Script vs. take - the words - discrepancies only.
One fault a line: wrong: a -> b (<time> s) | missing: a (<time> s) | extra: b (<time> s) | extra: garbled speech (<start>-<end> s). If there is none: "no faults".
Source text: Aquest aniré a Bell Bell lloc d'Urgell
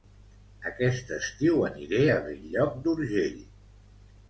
extra: estiu (1.2 s)
missing: Bell (2.5 s)